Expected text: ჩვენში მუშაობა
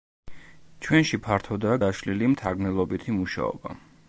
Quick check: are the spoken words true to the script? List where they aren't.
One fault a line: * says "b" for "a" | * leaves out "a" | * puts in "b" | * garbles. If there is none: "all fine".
* puts in "ფართოდაა გაშლილი მთარგმნელობითი"